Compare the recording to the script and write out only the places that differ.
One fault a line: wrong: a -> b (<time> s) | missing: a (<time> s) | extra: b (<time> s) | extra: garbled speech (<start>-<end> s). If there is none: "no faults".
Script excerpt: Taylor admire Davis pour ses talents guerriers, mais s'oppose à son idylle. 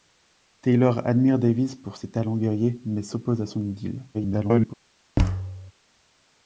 extra: garbled speech (4.1-4.7 s)